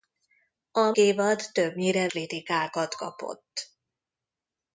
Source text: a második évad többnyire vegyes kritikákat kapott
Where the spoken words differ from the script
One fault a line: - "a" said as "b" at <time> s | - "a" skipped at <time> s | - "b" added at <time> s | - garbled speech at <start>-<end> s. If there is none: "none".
- "második" skipped at 0.9 s
- "vegyes" skipped at 2.1 s